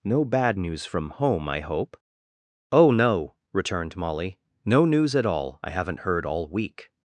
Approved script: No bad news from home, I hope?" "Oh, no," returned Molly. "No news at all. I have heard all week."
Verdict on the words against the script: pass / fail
fail